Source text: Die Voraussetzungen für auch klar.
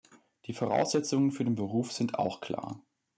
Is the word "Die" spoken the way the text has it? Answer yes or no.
yes